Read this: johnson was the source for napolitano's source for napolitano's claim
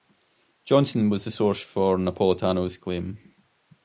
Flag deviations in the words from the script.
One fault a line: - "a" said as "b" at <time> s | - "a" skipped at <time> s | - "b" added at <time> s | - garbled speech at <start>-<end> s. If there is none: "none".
- "source for napolitano's" skipped at 2.8 s